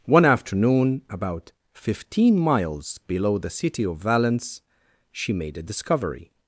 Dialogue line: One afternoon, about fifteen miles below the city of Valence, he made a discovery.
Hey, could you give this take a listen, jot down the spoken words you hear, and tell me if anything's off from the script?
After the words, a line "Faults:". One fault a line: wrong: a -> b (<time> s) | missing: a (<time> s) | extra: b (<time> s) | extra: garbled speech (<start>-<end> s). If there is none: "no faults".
One afternoon, about fifteen miles below the city of Valence, she made a discovery.
Faults:
wrong: he -> she (5.1 s)